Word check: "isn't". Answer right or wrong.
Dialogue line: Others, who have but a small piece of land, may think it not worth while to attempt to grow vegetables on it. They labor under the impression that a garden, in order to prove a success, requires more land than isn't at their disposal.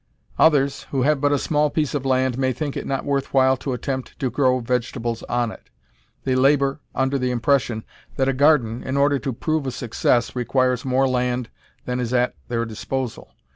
wrong